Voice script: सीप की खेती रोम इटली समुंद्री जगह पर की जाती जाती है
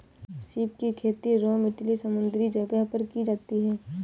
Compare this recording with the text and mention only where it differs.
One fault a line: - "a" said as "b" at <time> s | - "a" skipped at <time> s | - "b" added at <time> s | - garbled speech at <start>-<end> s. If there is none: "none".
- "जाती" skipped at 3.6 s